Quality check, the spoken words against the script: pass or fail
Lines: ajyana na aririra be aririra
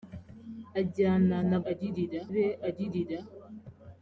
pass